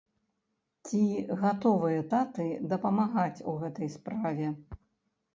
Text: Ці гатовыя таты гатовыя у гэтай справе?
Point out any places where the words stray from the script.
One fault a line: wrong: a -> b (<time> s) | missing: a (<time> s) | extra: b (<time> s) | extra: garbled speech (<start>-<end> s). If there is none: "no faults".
wrong: гатовыя -> дапамагаць (2.7 s)